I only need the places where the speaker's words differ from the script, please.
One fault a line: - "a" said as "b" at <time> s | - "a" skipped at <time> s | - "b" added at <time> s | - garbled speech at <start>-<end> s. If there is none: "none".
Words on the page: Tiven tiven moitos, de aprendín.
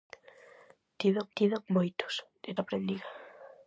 none